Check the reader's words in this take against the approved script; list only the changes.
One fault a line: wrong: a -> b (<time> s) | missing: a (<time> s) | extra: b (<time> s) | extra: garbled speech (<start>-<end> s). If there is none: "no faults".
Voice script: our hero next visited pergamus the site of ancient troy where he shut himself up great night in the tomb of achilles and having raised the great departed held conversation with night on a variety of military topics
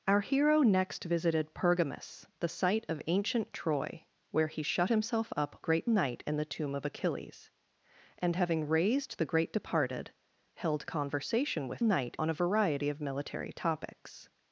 no faults